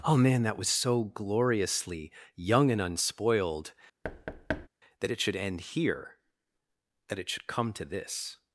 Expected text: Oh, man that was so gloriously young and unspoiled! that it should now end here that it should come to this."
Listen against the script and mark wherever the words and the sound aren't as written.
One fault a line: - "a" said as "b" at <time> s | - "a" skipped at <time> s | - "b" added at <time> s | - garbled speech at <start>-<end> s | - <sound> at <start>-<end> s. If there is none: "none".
- thud at 4.0-4.7 s
- "now" skipped at 5.4 s